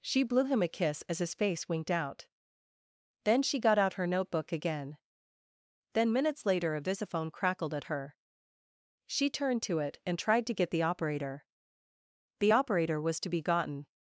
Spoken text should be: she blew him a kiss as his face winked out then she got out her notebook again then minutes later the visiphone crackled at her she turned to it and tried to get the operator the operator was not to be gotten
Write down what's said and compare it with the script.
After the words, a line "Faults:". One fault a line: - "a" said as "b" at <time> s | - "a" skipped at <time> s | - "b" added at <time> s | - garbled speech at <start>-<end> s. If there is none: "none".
she blew him a kiss as his face winked out then she got out her notebook again then minutes later a visiphone crackled at her she turned to it and tried to get the operator the operator was to be gotten
Faults:
- "the" said as "a" at 6.8 s
- "not" skipped at 13.2 s